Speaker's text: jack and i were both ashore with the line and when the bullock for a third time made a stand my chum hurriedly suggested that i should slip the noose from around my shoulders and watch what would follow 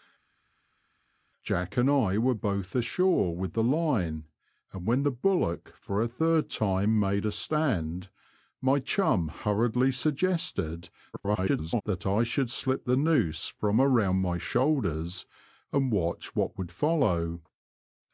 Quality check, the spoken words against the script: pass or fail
fail